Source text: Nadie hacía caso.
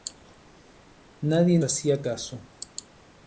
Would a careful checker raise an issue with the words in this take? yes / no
no